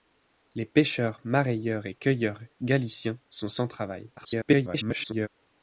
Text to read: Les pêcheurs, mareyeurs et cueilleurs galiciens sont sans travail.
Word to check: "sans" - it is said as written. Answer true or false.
true